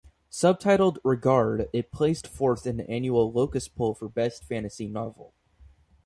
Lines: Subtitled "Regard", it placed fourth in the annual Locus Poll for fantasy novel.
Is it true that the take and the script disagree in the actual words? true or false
true